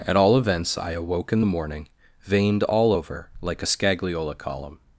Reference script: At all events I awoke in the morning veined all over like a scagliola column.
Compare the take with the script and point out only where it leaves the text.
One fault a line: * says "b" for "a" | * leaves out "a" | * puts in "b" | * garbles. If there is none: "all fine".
all fine